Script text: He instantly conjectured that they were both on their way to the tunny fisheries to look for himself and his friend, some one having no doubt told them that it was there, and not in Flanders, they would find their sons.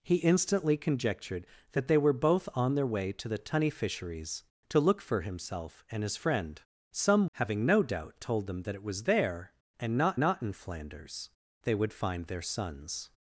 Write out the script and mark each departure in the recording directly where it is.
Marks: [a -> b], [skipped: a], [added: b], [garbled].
He instantly conjectured that they were both on their way to the tunny fisheries to look for himself and his friend, some [skipped: one] having no doubt told them that it was there, and not [added: not] in Flanders, they would find their sons.